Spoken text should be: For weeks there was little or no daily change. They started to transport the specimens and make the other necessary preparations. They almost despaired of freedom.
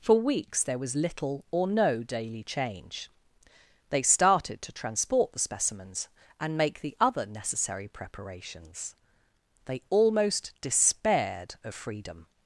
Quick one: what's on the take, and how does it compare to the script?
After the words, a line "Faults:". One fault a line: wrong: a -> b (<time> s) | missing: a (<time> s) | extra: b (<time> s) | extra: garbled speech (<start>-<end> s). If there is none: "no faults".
For weeks there was little or no daily change. They started to transport the specimens and make the other necessary preparations. They almost despaired of freedom.
Faults:
no faults